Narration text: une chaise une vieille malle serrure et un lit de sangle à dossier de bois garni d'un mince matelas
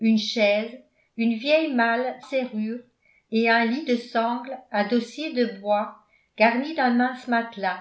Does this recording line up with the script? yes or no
yes